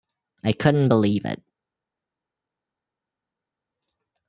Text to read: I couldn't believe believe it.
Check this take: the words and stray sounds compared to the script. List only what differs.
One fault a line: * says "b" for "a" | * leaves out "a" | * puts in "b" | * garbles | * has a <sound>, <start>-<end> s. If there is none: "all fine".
* leaves out "believe"